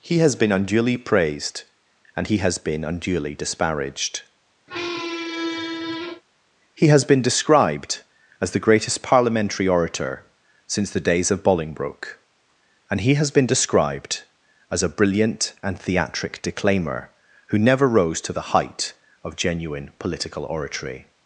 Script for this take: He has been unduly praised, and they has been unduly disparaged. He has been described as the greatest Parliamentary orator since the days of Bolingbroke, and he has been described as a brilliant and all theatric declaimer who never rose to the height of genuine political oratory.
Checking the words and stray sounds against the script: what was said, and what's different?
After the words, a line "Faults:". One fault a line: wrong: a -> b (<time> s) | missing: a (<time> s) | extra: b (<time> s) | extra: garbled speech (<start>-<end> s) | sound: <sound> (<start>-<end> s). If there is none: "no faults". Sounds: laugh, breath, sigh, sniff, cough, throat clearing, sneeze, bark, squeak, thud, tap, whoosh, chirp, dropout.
He has been unduly praised, and he has been unduly disparaged. He has been described as the greatest Parliamentary orator since the days of Bolingbroke, and he has been described as a brilliant and theatric declaimer who never rose to the height of genuine political oratory.
Faults:
wrong: they -> he (2.2 s)
sound: squeak (4.7-6.2 s)
missing: all (15.8 s)